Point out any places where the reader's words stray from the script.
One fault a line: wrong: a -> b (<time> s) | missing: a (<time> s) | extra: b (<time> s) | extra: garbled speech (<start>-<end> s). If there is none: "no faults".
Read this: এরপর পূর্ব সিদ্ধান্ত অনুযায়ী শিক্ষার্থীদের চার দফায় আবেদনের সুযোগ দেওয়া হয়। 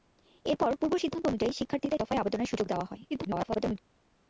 missing: চার (2.0 s)
extra: garbled speech (3.1-3.8 s)